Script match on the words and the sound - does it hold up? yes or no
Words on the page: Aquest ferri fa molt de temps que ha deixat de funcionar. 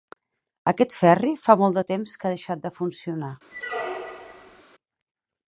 no